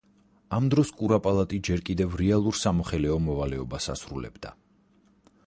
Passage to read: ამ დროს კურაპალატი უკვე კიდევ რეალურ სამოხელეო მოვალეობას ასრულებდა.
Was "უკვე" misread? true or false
true